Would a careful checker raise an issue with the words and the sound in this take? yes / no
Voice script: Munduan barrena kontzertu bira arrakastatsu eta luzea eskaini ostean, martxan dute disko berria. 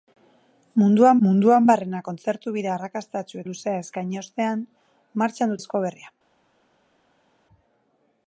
yes